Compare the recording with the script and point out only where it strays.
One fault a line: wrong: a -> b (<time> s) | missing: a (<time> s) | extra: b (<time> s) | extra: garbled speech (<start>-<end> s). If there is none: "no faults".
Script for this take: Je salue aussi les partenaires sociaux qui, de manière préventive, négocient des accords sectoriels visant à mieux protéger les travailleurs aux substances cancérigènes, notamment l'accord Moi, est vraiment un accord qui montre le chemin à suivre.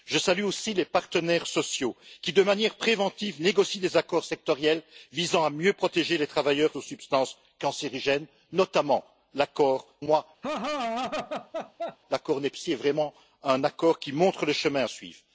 no faults